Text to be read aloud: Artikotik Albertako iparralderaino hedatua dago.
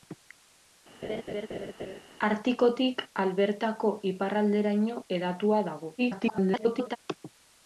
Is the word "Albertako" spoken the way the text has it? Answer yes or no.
yes